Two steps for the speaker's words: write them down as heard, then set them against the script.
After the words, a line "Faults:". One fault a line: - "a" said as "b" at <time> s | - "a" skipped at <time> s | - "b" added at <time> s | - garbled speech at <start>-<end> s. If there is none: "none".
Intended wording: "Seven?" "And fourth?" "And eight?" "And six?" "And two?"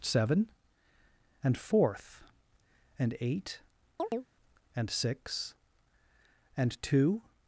"Seven?" "And fourth?" "And eight?" "And six?" "And two?"
Faults:
none